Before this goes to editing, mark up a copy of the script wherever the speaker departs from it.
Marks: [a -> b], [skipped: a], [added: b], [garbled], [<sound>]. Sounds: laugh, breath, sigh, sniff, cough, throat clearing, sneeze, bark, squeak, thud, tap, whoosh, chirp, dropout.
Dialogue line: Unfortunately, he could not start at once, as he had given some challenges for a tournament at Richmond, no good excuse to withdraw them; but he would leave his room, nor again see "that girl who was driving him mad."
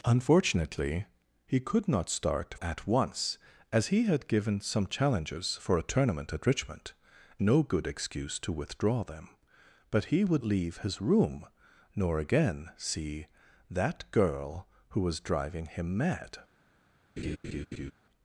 Unfortunately, he could not start at once, as he had given some challenges for a tournament at Richmond, no good excuse to withdraw them; but he would leave his room, nor again see "that girl who was driving him mad." [laugh]